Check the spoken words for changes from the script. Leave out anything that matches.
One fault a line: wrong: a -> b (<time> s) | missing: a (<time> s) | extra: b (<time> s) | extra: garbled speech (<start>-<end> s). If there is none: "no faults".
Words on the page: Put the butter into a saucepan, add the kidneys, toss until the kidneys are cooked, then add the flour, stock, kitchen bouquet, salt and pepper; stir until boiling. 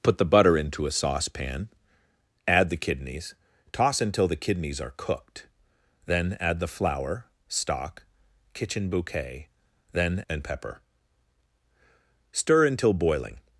wrong: salt -> then (9.9 s)